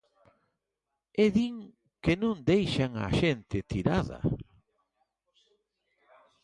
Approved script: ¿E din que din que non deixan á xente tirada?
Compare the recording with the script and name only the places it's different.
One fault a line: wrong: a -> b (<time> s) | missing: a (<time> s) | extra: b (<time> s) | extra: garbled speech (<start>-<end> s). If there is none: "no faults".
missing: din que (2.1 s)